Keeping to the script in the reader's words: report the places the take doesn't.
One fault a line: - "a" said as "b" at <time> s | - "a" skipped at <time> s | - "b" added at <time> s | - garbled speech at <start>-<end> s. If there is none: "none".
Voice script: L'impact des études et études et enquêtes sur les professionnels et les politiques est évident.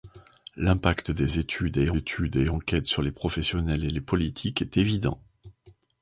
none